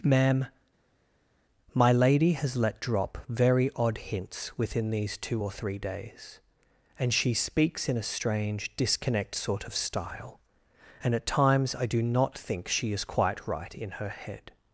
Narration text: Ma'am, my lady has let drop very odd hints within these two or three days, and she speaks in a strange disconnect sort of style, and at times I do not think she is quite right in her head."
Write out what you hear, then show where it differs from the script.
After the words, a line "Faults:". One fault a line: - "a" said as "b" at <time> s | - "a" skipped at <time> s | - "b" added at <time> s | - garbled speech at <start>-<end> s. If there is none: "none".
Ma'am, my lady has let drop very odd hints within these two or three days, and she speaks in a strange disconnect sort of style, and at times I do not think she is quite right in her head."
Faults:
none